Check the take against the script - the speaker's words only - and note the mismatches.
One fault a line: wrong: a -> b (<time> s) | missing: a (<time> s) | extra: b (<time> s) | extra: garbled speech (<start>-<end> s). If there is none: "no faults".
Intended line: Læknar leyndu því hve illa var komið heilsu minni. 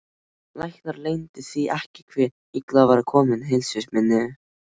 extra: ekki (1.8 s)